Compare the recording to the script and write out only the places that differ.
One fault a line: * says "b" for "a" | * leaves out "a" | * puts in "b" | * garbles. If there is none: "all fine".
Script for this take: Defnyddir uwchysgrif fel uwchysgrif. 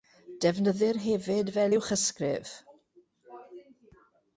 * says "hefyd" for "uwchysgrif"